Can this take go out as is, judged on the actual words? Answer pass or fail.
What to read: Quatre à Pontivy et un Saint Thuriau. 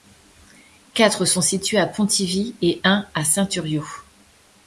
fail